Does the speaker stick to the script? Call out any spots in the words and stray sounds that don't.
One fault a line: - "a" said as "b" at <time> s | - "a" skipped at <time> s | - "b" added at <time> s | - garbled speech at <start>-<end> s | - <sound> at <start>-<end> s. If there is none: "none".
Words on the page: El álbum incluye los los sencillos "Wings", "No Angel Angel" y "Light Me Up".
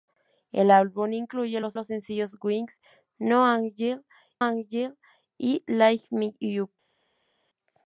none